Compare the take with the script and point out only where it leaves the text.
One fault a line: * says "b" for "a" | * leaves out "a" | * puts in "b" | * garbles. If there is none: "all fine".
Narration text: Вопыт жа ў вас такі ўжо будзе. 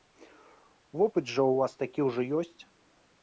* says "ёсць" for "будзе"